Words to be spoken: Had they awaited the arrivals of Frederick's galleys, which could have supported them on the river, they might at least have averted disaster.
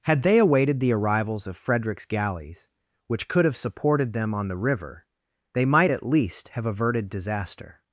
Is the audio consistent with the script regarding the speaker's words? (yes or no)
yes